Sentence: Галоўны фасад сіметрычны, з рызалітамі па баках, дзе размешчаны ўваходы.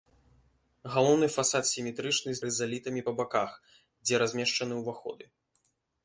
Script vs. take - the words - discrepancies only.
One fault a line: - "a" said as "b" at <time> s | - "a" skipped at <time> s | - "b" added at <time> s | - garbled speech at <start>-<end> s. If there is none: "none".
none